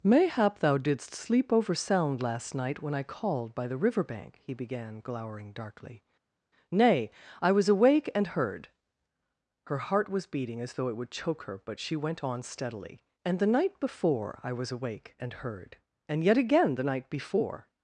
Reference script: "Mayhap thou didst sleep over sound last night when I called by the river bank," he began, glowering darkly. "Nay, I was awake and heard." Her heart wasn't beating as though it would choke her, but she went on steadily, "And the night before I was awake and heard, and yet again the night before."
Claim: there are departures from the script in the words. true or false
true